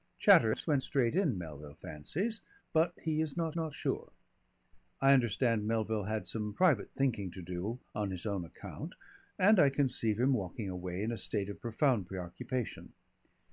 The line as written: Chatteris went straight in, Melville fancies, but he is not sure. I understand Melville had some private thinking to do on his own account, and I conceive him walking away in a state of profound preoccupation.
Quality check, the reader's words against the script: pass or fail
fail